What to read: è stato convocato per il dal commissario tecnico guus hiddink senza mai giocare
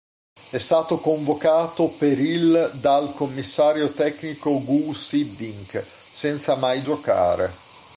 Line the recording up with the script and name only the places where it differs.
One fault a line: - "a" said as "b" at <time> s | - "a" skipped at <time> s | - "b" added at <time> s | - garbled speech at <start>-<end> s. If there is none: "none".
none